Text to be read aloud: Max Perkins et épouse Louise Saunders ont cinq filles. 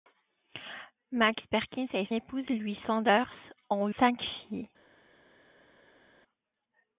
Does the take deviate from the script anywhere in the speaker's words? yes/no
no